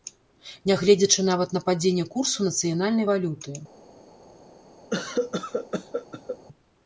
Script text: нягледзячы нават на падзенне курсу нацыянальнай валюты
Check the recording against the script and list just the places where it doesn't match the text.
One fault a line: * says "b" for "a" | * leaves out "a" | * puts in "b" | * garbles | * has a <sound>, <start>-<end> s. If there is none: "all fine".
* has a cough, 4.9-6.4 s